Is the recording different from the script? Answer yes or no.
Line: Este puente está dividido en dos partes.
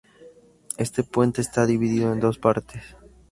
no